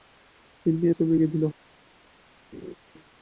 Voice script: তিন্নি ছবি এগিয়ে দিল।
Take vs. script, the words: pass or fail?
pass